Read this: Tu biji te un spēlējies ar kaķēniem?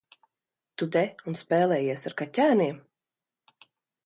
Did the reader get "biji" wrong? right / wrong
wrong